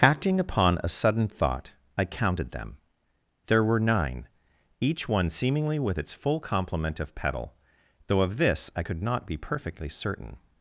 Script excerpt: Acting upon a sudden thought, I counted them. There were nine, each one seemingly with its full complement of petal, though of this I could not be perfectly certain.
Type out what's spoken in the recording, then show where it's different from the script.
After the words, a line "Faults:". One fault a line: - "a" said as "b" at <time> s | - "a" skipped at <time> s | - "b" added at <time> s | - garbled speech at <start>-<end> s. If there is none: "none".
Acting upon a sudden thought, I counted them. There were nine, each one seemingly with its full complement of petal, though of this I could not be perfectly certain.
Faults:
none